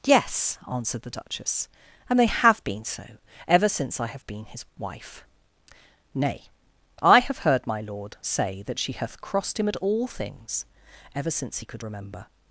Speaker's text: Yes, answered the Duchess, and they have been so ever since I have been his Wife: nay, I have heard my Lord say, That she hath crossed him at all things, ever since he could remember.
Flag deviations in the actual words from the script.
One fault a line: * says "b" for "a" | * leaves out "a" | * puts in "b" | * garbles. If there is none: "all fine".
all fine